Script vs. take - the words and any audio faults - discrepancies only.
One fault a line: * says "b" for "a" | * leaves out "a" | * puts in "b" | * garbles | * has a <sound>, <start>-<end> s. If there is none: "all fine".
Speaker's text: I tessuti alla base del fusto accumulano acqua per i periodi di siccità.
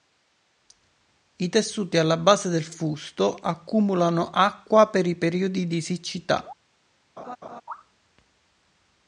* has a laugh, 7.2-7.6 s